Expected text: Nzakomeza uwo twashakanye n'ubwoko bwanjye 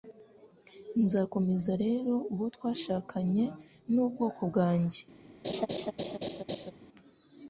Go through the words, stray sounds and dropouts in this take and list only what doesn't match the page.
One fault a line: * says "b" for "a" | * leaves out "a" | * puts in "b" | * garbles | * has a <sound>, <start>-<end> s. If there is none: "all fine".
* puts in "rero"
* has a laugh, 5.4-6.7 s